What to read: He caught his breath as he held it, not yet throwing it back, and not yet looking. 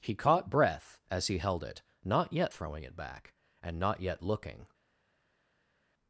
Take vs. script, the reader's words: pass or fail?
fail